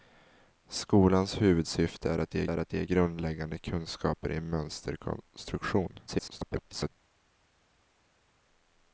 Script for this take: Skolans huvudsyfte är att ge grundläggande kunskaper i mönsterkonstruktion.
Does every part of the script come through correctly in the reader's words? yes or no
no